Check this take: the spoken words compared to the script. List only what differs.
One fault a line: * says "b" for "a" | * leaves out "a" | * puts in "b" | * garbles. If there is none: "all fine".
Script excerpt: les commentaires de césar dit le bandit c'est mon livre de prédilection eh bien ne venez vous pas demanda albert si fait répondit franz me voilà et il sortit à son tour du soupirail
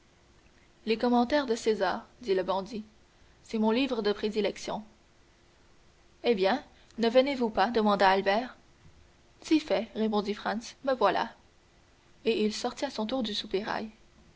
all fine